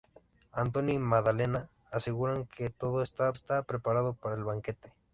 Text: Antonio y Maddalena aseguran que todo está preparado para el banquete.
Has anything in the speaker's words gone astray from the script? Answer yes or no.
yes